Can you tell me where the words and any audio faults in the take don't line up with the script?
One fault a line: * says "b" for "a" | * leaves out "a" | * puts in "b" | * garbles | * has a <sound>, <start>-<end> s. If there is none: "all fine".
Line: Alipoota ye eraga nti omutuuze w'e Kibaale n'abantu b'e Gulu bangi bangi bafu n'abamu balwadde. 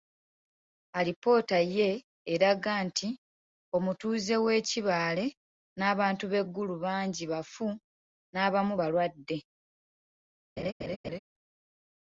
* leaves out "bangi"
* has a laugh, 10.6-11.2 s